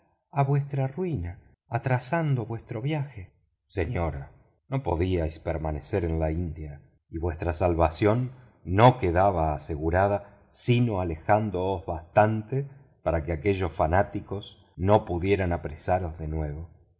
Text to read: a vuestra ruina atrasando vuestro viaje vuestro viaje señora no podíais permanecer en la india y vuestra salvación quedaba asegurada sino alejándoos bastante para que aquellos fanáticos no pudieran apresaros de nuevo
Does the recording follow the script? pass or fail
fail